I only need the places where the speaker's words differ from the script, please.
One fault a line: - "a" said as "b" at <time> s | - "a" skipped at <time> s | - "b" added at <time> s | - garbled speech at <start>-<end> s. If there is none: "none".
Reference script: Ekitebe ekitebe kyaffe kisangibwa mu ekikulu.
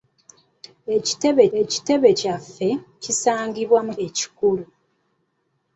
none